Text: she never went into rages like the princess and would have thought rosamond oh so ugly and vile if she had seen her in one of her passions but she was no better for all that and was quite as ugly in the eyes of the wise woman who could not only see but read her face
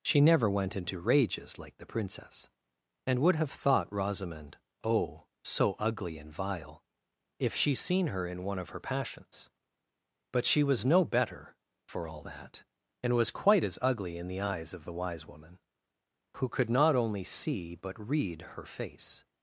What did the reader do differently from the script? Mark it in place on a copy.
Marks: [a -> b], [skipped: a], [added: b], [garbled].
she never went into rages like the princess and would have thought rosamond oh so ugly and vile if she [skipped: had] seen her in one of her passions but she was no better for all that and was quite as ugly in the eyes of the wise woman who could not only see but read her face